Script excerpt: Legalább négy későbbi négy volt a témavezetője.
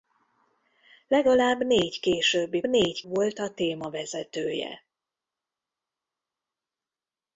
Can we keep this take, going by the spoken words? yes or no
yes